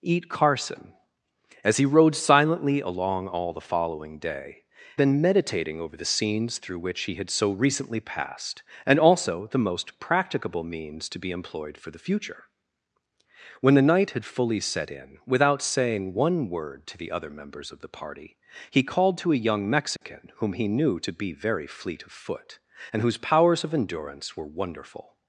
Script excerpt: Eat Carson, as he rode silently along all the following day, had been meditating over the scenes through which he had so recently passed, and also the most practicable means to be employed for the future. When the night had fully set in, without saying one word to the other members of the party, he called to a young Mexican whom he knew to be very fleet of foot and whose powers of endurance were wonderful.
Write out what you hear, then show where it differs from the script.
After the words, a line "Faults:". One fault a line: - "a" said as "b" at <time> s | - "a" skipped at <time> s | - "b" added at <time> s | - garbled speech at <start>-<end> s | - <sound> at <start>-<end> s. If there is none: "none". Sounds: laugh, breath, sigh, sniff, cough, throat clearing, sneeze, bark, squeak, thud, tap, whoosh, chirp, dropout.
Eat Carson, as he rode silently along all the following day, been meditating over the scenes through which he had so recently passed, and also the most practicable means to be employed for the future. When the night had fully set in, without saying one word to the other members of the party, he called to a young Mexican whom he knew to be very fleet of foot and whose powers of endurance were wonderful.
Faults:
- "had" skipped at 4.6 s
- dropout at 20.0-20.0 s